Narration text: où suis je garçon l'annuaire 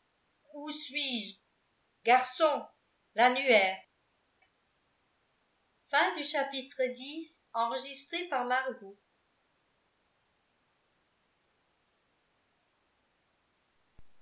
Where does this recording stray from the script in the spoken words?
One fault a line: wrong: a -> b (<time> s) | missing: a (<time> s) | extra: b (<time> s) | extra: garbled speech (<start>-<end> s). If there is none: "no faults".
no faults